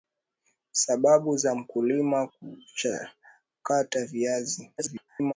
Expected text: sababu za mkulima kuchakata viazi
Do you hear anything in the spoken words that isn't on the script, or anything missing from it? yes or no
yes